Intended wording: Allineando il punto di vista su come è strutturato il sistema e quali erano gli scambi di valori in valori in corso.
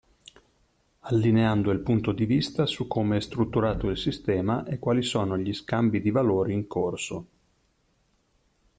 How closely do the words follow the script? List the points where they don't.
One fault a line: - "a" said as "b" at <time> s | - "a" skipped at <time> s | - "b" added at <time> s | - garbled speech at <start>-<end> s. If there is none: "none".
- "erano" said as "sono" at 5.0 s
- "valori in" skipped at 6.7 s